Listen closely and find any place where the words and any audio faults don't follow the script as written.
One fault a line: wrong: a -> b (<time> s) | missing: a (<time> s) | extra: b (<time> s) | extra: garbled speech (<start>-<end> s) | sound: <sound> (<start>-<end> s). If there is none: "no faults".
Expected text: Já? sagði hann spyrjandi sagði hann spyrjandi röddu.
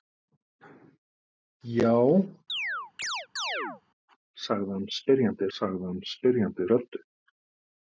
sound: chirp (2.5-3.8 s)